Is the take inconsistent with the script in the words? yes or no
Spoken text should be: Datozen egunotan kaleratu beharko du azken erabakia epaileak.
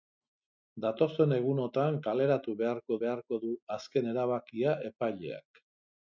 yes